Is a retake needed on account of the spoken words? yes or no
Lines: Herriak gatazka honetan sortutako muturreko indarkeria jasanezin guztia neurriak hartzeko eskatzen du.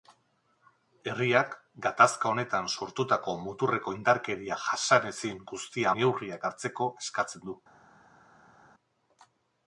no